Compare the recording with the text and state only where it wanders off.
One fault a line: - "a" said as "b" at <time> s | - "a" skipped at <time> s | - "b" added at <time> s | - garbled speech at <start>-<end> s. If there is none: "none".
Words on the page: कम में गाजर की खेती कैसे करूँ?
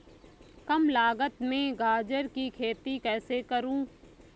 - "लागत" added at 0.9 s